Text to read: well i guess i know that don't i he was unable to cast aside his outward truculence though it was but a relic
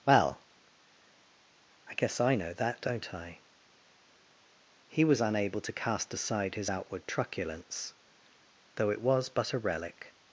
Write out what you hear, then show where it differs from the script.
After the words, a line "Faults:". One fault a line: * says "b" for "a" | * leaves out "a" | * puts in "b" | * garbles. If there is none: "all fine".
well i guess i know that don't i he was unable to cast aside his outward truculence though it was but a relic
Faults:
all fine